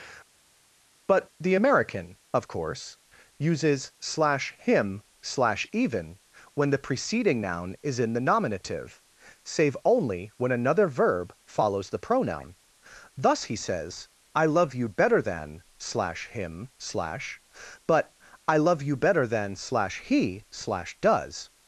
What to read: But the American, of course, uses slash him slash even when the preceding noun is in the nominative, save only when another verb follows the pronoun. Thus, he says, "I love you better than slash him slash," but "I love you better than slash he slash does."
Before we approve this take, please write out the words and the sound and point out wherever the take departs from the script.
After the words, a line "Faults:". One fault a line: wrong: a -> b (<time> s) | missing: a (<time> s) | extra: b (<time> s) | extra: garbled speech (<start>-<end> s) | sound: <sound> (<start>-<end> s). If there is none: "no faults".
But the American, of course, uses slash him slash even when the preceding noun is in the nominative, save only when another verb follows the pronoun. Thus, he says, "I love you better than slash him slash," but "I love you better than slash he slash does."
Faults:
no faults